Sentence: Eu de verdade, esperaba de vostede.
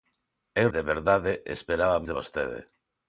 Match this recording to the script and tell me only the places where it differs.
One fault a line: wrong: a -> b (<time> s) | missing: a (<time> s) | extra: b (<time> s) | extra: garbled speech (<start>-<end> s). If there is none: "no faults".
no faults